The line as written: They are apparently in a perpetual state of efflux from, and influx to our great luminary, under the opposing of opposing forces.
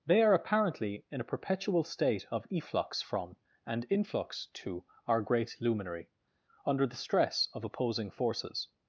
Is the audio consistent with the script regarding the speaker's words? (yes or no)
no